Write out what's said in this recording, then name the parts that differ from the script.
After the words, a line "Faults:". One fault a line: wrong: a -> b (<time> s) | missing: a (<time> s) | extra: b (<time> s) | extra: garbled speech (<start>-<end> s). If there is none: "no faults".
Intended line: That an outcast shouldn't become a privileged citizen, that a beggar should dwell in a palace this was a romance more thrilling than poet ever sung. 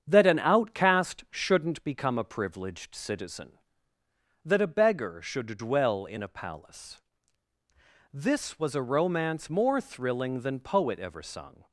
That an outcast shouldn't become a privileged citizen, that a beggar should dwell in a palace this was a romance more thrilling than poet ever sung.
Faults:
no faults